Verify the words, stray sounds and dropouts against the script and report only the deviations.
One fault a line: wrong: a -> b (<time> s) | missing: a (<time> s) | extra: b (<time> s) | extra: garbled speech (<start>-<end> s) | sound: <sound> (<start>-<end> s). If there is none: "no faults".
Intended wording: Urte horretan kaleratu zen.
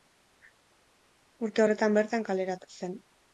extra: bertan (2.0 s)